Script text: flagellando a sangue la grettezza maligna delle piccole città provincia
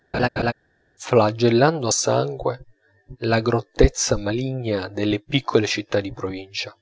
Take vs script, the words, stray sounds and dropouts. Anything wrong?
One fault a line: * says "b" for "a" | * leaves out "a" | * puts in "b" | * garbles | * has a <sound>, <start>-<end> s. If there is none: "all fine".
* has a laugh, 0.1-0.5 s
* puts in "di"